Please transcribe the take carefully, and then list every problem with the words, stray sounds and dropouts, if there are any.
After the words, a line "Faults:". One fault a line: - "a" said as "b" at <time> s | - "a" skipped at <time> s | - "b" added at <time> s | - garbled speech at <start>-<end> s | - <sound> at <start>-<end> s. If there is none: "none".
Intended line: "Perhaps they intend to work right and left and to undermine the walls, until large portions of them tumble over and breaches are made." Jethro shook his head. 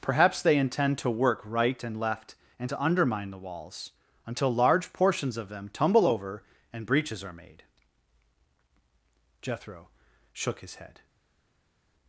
"Perhaps they intend to work right and left and to undermine the walls, until large portions of them tumble over and breaches are made." Jethro shook his head.
Faults:
none